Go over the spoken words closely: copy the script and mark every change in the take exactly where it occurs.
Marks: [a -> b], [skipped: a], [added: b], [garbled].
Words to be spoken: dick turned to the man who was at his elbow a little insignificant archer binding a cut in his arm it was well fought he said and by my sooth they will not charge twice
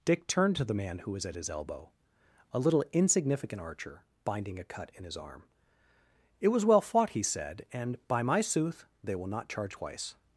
dick turned to the man who was at his elbow a little insignificant archer binding a cut in his arm it was well fought he said and by my sooth they will not charge twice